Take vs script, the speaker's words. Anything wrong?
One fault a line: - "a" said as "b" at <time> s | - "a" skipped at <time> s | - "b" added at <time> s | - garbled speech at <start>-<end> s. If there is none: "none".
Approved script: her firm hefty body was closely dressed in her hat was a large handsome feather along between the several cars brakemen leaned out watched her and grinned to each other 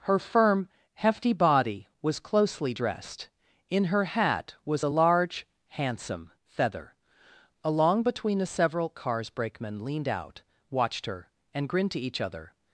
none